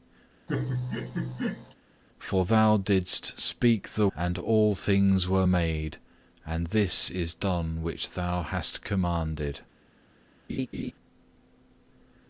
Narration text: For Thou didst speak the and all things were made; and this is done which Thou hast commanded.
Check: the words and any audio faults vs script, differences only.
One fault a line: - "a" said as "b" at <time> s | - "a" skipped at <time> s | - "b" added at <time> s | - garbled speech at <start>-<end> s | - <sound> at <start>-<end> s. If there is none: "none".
- laugh at 0.5-1.7 s
- laugh at 10.5-10.9 s